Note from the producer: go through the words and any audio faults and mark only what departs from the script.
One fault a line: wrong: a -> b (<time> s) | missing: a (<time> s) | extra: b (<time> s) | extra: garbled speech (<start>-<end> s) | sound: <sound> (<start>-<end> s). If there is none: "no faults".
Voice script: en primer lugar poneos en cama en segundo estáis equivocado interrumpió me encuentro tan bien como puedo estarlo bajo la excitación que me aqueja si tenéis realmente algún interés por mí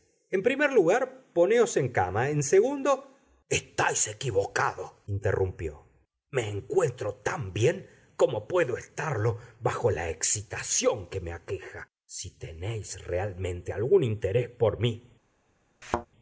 sound: thud (15.8-16.1 s)